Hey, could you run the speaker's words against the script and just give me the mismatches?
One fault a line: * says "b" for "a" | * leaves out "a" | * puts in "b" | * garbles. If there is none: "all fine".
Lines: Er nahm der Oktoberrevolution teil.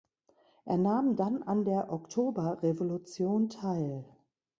* puts in "dann an"